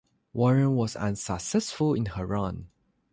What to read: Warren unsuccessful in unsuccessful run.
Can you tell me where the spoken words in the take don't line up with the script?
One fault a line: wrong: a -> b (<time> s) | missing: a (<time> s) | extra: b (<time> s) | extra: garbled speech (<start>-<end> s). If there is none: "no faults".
extra: was (0.8 s)
wrong: unsuccessful -> her (2.0 s)